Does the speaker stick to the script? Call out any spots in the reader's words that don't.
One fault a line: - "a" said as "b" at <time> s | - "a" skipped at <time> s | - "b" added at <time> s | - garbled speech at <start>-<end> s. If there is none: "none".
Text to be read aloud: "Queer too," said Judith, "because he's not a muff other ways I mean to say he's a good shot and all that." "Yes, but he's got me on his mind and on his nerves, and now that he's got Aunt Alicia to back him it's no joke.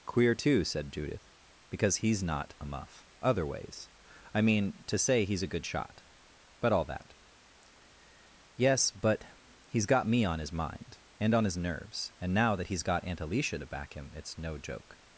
- "and" said as "but" at 6.6 s